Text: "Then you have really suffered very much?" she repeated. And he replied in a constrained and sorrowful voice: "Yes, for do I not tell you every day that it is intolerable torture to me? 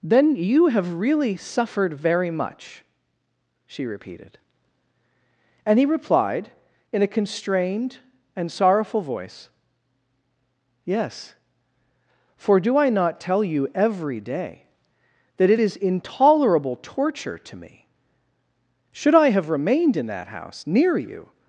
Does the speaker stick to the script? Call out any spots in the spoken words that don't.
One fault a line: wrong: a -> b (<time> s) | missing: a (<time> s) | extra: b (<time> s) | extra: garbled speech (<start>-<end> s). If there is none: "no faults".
extra: Should I have remained in that house near you (18.9 s)